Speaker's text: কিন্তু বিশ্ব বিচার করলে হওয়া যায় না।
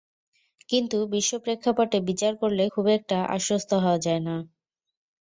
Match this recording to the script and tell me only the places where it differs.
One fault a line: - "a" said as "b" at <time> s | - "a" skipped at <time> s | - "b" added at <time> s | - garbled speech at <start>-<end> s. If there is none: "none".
- "প্রেক্ষাপটে" added at 1.4 s
- "খুব একটা আশ্বস্ত" added at 2.7 s